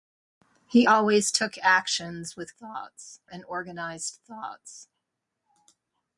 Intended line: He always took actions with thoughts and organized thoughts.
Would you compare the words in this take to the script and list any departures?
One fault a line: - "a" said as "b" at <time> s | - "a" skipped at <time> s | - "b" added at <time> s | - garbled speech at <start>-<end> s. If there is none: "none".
none